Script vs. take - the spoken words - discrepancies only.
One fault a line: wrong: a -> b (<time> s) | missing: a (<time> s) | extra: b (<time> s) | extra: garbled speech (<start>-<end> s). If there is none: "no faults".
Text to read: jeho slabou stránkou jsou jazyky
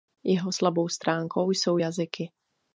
no faults